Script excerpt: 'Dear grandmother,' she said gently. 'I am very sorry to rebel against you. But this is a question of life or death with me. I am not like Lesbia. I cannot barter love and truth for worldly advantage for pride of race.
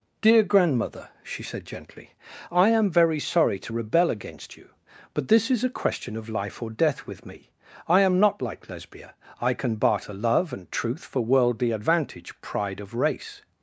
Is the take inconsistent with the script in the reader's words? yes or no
yes